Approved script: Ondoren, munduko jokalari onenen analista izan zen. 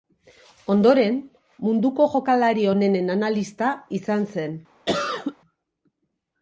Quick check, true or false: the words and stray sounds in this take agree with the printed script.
false